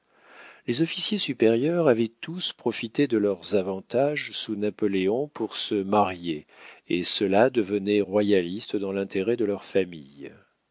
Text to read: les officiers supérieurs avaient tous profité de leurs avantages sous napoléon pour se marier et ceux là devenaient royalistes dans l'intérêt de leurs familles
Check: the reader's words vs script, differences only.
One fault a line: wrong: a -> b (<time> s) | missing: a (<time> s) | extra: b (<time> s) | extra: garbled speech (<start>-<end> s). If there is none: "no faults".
no faults